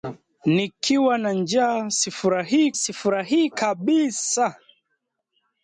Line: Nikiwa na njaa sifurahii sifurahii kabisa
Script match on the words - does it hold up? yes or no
yes